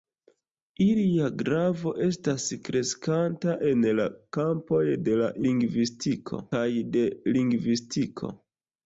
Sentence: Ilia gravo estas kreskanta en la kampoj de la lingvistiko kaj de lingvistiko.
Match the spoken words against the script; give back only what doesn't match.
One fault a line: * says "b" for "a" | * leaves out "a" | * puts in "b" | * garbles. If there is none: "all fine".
all fine